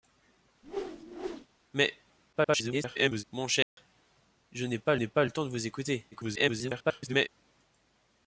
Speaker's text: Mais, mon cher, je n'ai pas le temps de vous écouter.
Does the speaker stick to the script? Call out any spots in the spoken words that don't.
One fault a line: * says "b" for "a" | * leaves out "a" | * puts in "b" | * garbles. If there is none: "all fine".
* garbles
* puts in "n'ai pas"
* garbles